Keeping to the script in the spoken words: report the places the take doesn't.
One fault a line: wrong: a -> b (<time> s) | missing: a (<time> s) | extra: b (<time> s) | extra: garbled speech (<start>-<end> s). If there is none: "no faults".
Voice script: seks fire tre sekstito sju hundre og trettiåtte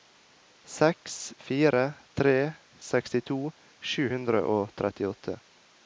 no faults